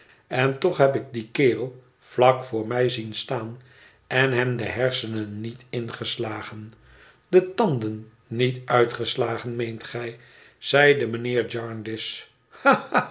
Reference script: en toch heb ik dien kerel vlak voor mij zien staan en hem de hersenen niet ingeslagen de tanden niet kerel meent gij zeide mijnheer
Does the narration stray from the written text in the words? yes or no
yes